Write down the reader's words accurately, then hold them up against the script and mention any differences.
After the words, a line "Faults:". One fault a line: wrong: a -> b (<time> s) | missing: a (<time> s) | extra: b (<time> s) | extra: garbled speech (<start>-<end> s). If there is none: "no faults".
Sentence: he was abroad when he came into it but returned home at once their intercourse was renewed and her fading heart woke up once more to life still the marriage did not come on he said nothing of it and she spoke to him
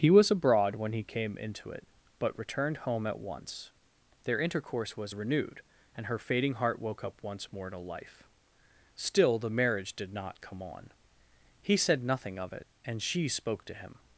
he was abroad when he came into it but returned home at once their intercourse was renewed and her fading heart woke up once more to life still the marriage did not come on he said nothing of it and she spoke to him
Faults:
no faults